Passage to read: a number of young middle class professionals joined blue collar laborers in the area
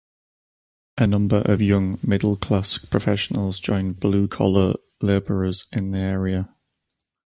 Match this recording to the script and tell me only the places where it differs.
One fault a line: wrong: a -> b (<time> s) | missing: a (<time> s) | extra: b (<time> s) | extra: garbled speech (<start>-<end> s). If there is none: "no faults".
no faults